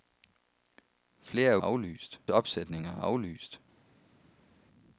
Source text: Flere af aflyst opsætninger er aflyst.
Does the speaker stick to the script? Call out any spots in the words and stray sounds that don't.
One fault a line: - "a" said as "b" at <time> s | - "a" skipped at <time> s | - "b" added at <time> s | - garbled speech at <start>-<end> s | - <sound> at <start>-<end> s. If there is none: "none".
none